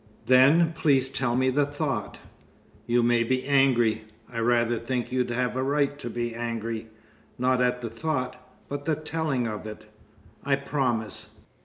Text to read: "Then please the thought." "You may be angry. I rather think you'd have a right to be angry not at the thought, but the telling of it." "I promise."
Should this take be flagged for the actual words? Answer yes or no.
yes